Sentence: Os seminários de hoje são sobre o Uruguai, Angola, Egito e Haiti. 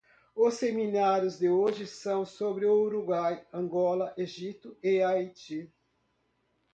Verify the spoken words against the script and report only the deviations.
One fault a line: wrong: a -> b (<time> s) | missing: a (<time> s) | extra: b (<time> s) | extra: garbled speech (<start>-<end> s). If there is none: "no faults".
no faults